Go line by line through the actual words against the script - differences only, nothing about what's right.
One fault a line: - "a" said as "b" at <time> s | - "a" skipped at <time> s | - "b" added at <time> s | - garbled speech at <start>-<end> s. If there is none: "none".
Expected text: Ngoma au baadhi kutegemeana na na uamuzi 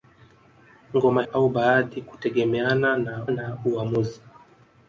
none